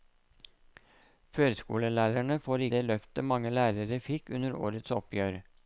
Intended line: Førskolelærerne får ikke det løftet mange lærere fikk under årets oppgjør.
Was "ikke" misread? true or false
true